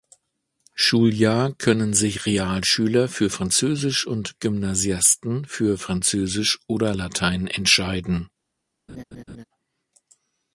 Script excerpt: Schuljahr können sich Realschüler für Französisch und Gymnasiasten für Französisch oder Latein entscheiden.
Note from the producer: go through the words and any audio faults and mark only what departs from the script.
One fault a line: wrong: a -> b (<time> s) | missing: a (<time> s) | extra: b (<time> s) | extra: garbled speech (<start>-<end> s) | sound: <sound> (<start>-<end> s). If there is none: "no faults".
sound: laugh (8.9-9.4 s)